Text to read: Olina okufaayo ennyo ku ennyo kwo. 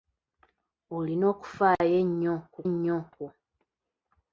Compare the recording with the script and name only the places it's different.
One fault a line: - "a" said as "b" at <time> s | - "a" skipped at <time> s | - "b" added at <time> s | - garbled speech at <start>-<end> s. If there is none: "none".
none